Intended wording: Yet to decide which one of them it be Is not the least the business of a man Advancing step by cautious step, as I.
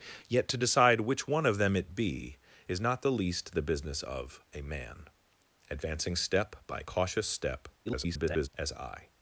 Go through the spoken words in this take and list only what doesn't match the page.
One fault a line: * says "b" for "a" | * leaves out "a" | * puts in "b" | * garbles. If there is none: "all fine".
* garbles